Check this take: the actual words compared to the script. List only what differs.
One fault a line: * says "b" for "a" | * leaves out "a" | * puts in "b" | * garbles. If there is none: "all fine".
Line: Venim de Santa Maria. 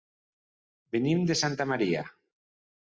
all fine